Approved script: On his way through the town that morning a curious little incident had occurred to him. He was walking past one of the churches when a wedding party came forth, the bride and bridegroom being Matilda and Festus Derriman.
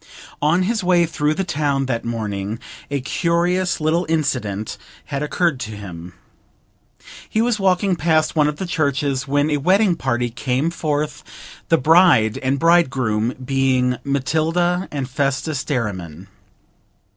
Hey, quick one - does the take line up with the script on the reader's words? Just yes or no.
yes